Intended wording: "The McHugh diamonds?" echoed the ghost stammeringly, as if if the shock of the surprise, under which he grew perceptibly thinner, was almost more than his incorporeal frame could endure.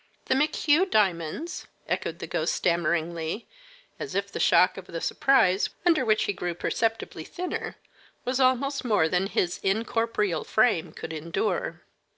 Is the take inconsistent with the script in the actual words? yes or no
yes